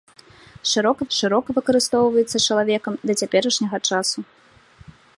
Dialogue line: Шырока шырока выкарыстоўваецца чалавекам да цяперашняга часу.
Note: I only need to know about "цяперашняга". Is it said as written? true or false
true